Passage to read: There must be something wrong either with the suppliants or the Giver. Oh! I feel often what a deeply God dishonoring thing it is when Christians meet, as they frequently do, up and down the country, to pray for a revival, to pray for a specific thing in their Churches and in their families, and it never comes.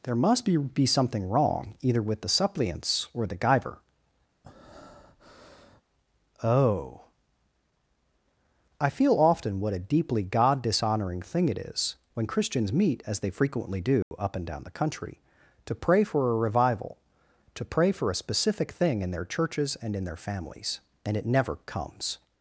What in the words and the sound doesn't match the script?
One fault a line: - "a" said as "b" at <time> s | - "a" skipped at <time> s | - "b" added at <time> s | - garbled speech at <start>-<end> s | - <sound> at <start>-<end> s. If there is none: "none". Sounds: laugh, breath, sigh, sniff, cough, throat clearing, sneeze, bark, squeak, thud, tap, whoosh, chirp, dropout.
- "be" added at 0.6 s
- breath at 4.4-5.8 s
- dropout at 14.0-14.1 s